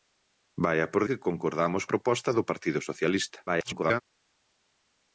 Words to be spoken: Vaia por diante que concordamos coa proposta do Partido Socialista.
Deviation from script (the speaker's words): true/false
true